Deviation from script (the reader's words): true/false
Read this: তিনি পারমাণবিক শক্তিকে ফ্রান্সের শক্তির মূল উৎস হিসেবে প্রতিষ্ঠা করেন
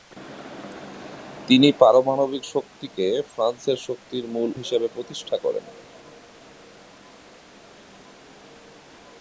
true